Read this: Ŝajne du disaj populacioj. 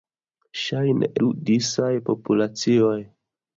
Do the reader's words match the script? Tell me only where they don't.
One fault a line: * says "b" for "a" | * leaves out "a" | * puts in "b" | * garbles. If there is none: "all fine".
all fine